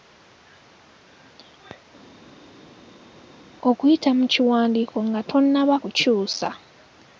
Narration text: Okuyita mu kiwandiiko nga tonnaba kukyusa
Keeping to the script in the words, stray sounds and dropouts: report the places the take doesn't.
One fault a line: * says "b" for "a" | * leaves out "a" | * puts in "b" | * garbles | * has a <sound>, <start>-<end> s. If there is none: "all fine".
all fine